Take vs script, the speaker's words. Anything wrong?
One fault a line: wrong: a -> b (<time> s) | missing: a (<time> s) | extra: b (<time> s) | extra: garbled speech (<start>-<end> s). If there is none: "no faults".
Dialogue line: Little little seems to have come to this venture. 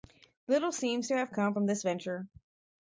missing: little (0.7 s)
wrong: to -> from (1.5 s)